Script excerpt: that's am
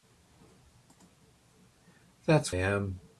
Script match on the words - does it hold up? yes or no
yes